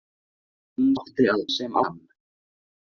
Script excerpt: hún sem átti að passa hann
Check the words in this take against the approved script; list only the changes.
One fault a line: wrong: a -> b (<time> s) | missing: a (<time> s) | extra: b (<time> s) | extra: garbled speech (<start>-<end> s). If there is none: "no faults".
missing: sem (0.9 s)
wrong: passa -> sem (1.5 s)